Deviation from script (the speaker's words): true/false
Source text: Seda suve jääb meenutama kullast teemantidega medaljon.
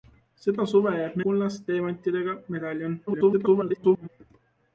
true